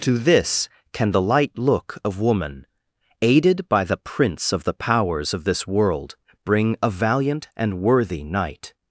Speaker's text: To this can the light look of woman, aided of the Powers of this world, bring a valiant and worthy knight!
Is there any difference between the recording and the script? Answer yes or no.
yes